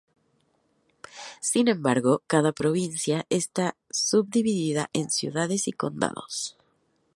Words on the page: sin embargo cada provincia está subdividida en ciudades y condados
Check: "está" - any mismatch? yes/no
no